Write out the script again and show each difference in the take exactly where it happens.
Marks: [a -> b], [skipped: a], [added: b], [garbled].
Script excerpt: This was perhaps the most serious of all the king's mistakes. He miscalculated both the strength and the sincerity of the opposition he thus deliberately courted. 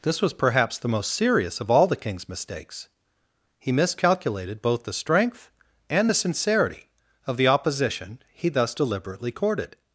This was perhaps the most serious of all the king's mistakes. He miscalculated both the strength and the sincerity of the opposition he thus deliberately courted.